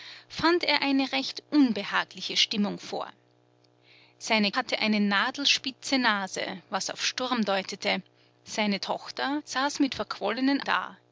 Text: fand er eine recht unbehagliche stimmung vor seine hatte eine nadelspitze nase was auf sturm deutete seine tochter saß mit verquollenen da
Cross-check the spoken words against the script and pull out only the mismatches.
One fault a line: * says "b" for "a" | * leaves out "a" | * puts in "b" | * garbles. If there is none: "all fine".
all fine